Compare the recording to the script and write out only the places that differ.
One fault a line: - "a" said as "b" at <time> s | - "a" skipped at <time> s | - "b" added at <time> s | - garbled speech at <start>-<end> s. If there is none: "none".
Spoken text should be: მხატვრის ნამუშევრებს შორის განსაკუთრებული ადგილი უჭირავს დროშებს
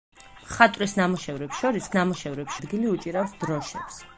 - "განსაკუთრებული" said as "ნამუშევრებს" at 2.0 s